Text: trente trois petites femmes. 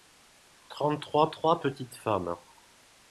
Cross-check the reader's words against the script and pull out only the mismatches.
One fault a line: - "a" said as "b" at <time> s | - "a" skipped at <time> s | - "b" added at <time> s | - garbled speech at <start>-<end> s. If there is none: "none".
- "trois" added at 1.3 s